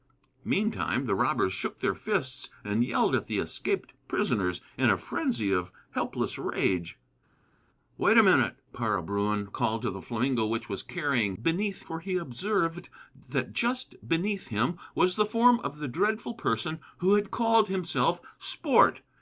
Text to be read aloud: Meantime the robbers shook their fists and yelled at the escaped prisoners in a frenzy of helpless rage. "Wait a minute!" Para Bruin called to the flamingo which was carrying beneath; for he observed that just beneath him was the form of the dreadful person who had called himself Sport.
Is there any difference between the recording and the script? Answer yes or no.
no